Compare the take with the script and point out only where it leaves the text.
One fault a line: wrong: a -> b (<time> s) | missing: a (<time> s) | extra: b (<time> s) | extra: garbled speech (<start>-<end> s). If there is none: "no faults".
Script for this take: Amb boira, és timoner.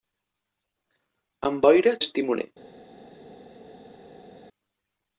no faults